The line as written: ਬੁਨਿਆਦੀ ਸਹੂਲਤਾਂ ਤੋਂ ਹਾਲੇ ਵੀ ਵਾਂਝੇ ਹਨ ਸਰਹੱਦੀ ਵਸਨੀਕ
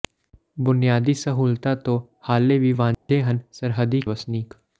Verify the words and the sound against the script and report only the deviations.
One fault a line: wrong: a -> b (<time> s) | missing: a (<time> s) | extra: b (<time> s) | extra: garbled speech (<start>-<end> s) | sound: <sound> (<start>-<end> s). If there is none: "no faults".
sound: dropout (2.9-3.1 s)